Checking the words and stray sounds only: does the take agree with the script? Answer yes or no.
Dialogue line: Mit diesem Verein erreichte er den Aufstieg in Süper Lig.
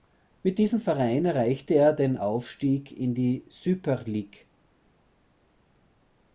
no